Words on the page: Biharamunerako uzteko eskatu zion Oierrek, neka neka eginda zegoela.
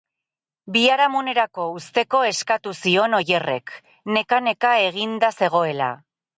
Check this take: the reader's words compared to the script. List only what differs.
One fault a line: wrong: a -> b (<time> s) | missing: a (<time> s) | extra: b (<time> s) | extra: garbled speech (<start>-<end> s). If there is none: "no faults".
no faults